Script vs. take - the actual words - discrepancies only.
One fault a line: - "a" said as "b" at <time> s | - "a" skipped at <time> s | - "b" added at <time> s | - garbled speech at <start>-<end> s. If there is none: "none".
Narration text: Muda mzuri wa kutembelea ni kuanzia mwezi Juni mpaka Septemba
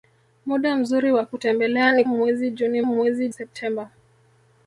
- "kuanzia" skipped at 2.0 s
- "mpaka" said as "mwezi" at 2.8 s